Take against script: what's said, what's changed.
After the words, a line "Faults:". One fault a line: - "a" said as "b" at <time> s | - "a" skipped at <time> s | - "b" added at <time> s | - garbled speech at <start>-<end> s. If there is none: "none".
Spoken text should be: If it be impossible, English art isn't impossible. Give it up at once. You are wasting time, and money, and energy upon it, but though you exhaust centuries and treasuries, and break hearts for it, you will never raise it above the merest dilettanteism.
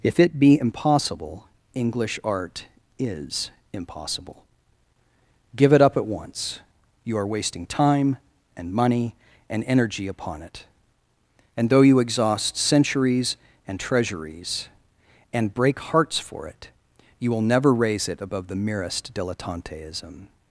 If it be impossible, English art is impossible. Give it up at once. You are wasting time, and money, and energy upon it, and though you exhaust centuries and treasuries, and break hearts for it, you will never raise it above the merest dilettanteism.
Faults:
- "isn't" said as "is" at 3.0 s
- "but" said as "and" at 11.6 s